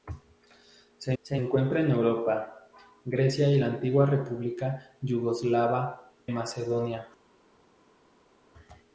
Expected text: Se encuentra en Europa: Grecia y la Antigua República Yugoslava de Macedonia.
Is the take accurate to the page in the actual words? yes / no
no